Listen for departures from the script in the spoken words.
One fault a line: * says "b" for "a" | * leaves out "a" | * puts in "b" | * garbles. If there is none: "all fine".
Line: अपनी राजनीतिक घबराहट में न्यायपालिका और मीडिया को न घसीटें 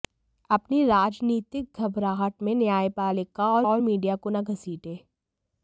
* puts in "और"